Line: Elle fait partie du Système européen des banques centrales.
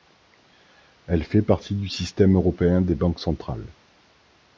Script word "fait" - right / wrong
right